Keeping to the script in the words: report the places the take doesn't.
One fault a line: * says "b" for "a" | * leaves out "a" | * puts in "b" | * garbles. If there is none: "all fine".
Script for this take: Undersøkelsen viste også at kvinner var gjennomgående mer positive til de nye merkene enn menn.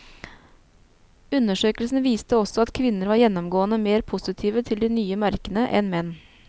all fine